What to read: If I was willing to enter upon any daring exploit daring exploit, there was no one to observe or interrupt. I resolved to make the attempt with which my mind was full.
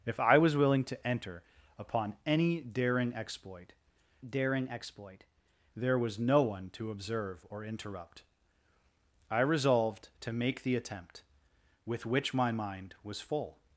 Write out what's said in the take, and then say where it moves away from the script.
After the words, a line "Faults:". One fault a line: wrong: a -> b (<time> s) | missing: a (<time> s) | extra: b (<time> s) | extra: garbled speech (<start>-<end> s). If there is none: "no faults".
If I was willing to enter upon any daring exploit daring exploit, there was no one to observe or interrupt. I resolved to make the attempt with which my mind was full.
Faults:
no faults